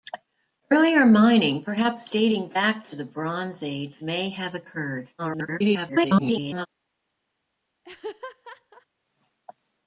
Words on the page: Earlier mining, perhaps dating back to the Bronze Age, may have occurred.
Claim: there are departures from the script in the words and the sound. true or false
true